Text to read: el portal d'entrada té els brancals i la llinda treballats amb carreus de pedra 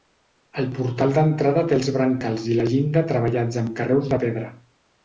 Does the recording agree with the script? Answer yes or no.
yes